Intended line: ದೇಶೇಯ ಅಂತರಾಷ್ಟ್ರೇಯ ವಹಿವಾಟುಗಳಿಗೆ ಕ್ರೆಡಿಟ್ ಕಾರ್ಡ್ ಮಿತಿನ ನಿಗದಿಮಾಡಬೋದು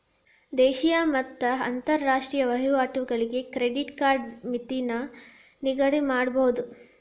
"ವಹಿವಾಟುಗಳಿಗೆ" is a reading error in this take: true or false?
false